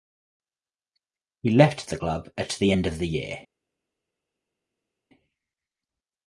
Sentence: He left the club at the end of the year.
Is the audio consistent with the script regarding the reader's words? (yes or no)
yes